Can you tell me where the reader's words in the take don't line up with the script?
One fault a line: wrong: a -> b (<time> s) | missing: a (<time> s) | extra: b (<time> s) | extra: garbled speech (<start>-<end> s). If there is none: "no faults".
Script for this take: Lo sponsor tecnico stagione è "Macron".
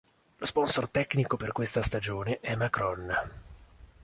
extra: per questa (1.4 s)